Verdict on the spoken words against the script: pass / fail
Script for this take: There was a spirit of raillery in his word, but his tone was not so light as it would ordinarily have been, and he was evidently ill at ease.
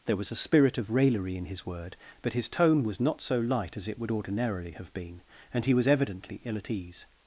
pass